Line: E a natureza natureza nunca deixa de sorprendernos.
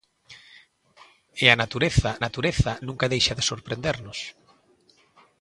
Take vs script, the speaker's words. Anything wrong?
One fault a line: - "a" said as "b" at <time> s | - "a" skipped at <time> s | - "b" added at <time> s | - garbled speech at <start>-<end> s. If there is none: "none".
none